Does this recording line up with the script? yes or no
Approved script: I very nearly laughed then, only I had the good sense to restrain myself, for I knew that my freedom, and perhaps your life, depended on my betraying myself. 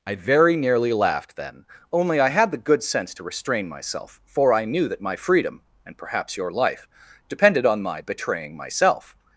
yes